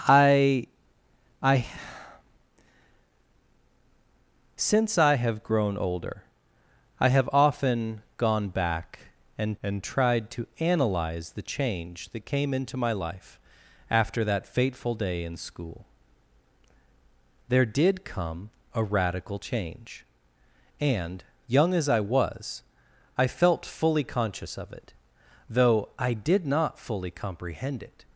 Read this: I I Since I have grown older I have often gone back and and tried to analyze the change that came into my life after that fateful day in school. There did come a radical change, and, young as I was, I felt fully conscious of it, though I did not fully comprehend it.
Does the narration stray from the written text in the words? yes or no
no